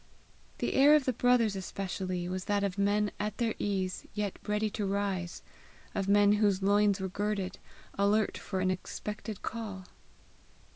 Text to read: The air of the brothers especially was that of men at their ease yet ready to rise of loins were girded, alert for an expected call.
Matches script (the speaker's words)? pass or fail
fail